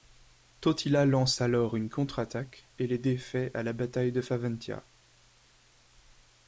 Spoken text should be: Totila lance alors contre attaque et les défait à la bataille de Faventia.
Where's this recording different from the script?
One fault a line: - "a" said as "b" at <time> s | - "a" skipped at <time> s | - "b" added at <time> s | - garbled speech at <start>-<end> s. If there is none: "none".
- "une" added at 1.8 s